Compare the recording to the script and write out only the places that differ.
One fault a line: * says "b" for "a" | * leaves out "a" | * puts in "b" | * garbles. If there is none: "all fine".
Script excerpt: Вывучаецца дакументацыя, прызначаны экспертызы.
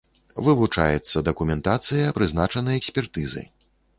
all fine